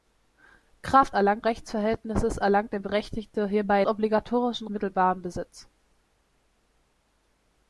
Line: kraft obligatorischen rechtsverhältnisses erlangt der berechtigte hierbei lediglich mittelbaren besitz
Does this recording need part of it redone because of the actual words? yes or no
yes